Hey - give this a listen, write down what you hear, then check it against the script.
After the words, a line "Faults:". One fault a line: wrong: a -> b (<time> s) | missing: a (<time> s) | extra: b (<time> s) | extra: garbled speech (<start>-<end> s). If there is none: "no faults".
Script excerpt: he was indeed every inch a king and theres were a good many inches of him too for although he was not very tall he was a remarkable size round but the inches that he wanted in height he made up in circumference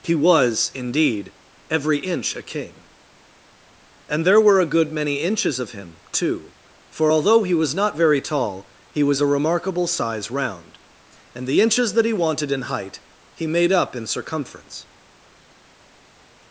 he was indeed every inch a king and there were a good many inches of him too for although he was not very tall he was a remarkable size round and the inches that he wanted in height he made up in circumference
Faults:
wrong: theres -> there (4.2 s)
wrong: but -> and (11.3 s)